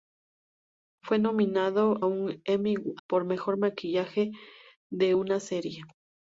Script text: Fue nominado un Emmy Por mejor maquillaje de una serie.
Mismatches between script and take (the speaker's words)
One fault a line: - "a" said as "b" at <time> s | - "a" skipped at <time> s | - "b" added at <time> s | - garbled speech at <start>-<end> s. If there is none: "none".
none